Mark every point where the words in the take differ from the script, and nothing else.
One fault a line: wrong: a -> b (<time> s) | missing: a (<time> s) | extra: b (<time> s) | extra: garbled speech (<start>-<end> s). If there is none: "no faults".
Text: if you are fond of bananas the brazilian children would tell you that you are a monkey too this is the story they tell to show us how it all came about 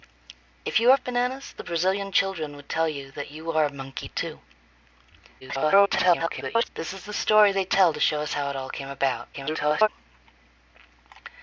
missing: fond (1.0 s)
extra: garbled speech (5.4-6.7 s)
extra: garbled speech (9.3-9.9 s)